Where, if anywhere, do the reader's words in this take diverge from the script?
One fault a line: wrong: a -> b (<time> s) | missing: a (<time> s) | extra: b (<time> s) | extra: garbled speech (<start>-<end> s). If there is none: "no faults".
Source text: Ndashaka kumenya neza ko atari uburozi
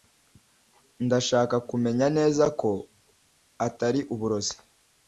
no faults